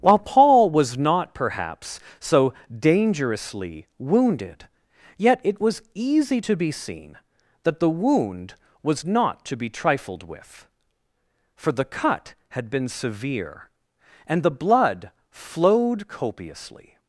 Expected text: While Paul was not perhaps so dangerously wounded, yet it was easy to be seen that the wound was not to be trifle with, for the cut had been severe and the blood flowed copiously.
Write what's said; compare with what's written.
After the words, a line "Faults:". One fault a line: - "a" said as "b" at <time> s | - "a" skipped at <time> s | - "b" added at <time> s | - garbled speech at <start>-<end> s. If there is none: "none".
While Paul was not perhaps so dangerously wounded, yet it was easy to be seen that the wound was not to be trifled with, for the cut had been severe and the blood flowed copiously.
Faults:
- "trifle" said as "trifled" at 9.7 s